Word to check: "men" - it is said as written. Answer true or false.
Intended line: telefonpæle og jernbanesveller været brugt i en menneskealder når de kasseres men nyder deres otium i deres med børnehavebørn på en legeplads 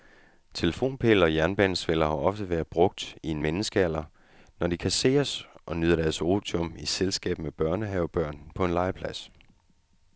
false